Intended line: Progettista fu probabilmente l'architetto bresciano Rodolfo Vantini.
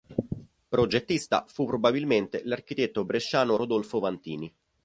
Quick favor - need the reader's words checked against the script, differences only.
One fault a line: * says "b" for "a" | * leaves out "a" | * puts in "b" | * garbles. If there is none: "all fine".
all fine